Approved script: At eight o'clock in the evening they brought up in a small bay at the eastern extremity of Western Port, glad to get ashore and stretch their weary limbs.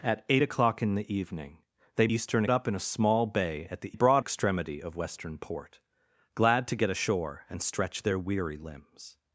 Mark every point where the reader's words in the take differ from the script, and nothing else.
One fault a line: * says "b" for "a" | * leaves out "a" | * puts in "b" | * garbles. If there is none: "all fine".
* says "eastern" for "brought"
* says "brought" for "eastern"